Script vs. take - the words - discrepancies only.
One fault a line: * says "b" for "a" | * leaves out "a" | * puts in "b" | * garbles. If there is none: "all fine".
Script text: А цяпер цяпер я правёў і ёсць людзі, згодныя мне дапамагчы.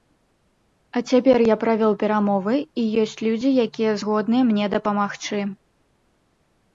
* leaves out "цяпер"
* puts in "перамовы"
* puts in "якія"